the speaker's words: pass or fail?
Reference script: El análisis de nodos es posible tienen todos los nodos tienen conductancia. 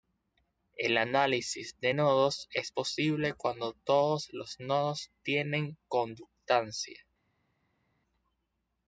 fail